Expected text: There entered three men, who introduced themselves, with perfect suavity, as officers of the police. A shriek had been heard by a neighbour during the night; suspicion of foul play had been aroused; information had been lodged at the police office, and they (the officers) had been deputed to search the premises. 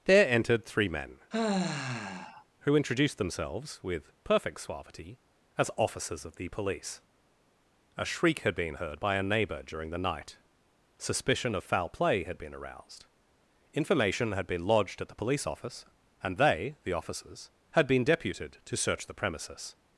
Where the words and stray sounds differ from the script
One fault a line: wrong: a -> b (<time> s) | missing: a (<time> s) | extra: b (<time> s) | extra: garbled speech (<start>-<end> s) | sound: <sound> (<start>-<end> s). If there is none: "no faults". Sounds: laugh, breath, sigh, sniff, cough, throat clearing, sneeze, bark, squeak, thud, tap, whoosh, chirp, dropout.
sound: sigh (1.3-2.4 s)